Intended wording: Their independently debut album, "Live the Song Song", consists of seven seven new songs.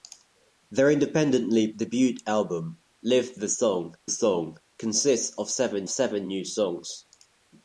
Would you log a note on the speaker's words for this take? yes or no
no